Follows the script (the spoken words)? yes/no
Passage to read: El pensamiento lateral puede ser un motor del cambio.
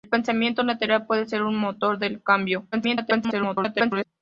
no